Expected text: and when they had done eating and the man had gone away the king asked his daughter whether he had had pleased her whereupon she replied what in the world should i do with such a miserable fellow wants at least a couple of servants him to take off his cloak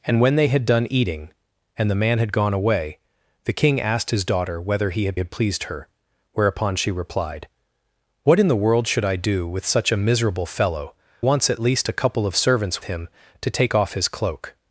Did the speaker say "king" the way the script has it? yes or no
yes